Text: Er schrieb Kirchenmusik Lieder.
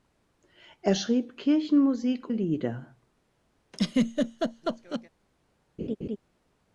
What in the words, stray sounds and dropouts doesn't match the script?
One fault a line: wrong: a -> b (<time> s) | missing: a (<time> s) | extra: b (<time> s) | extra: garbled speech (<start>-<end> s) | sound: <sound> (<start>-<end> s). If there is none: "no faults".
sound: laugh (3.7-5.1 s)
sound: laugh (5.8-6.2 s)